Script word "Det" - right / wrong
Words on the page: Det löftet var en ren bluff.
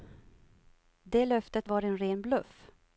right